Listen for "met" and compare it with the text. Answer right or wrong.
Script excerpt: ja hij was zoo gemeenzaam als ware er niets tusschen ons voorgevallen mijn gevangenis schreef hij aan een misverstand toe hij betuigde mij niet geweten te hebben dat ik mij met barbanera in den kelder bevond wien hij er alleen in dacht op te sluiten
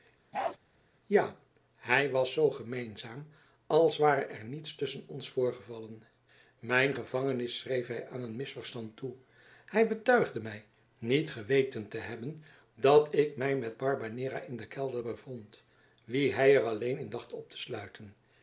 right